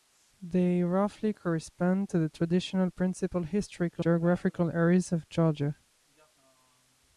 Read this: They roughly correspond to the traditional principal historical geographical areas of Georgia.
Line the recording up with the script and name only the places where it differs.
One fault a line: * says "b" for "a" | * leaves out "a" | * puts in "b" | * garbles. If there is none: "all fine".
all fine